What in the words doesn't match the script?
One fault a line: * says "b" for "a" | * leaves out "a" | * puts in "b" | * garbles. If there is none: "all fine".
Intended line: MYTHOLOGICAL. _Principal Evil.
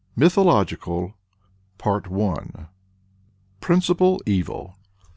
all fine